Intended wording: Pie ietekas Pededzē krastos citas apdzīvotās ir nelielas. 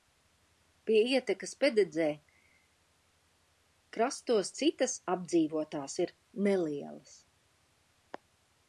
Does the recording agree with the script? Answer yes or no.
yes